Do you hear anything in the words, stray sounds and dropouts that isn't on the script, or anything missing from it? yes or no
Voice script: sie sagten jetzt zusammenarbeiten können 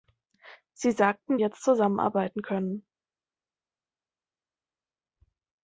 no